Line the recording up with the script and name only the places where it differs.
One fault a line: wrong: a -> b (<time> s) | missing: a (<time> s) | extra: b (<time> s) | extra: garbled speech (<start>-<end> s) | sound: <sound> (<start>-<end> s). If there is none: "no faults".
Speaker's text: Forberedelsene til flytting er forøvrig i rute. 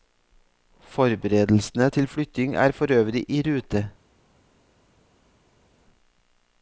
no faults